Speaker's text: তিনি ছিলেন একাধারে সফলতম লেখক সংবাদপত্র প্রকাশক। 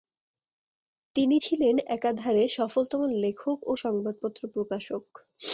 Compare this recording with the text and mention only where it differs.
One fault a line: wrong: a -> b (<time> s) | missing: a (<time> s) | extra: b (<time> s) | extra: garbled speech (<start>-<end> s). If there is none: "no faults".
extra: ও (3.6 s)